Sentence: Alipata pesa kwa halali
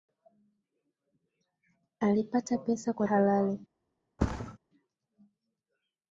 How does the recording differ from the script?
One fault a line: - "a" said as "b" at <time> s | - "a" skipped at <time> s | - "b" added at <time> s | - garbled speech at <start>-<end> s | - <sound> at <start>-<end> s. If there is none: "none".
- thud at 4.2-4.6 s